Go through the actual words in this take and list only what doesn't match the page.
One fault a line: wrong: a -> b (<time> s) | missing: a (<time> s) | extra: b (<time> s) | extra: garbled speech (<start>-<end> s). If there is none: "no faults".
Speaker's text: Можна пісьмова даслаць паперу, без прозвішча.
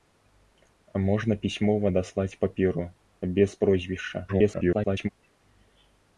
extra: garbled speech (4.3-5.1 s)